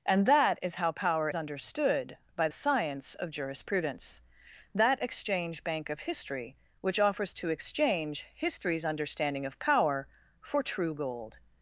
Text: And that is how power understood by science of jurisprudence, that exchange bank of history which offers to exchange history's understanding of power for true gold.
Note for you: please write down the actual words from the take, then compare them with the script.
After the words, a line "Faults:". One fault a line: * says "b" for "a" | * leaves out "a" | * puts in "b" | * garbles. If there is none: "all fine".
And that is how power understood by science of jurisprudence, that exchange bank of history which offers to exchange history's understanding of power for true gold.
Faults:
all fine